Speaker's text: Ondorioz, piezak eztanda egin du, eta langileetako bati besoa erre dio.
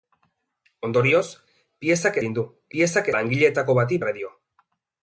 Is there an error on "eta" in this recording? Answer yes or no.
yes